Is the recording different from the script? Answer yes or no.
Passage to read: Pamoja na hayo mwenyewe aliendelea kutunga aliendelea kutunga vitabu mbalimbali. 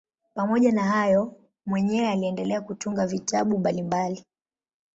yes